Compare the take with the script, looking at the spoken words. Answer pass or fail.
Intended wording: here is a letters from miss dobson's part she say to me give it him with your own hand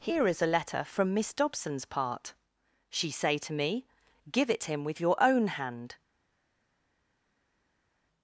fail